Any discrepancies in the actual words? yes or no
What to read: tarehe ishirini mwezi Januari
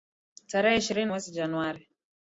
no